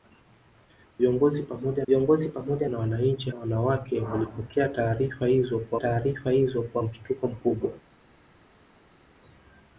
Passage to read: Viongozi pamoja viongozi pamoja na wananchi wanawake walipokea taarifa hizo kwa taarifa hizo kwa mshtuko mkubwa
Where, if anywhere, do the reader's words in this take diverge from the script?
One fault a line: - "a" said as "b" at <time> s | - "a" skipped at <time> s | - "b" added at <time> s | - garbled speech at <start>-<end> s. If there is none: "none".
none